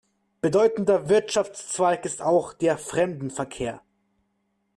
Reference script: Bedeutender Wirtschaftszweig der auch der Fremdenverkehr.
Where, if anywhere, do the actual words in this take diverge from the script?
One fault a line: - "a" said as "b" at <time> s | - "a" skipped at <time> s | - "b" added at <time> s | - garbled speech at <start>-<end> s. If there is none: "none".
- "der" said as "ist" at 2.0 s